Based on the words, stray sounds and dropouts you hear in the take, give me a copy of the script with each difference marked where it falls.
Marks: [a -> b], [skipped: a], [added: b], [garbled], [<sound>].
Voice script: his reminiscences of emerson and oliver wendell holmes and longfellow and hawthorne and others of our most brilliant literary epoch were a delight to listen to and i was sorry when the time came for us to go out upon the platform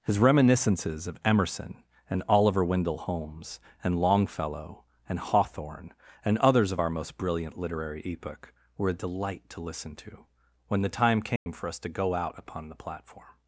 his reminiscences of emerson and oliver wendell holmes and longfellow and hawthorne and others of our most brilliant literary epoch were a delight to listen to [skipped: and i was sorry] when the time came [dropout] for us to go out upon the platform